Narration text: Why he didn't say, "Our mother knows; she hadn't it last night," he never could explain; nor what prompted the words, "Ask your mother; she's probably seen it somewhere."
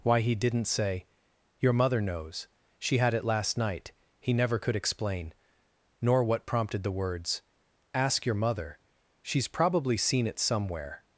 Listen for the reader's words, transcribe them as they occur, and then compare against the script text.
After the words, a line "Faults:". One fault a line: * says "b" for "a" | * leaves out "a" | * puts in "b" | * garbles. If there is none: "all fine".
Why he didn't say, "Your mother knows; she had it last night," he never could explain; nor what prompted the words, "Ask your mother; she's probably seen it somewhere."
Faults:
* says "Your" for "Our"
* says "had" for "hadn't"